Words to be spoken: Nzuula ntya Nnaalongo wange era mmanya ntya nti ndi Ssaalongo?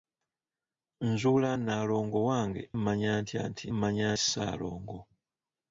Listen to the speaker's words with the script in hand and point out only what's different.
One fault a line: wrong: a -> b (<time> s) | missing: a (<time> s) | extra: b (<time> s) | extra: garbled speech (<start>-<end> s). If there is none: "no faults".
missing: ntya (1.5 s)
missing: era (2.6 s)
wrong: ndi -> mmanya (3.7 s)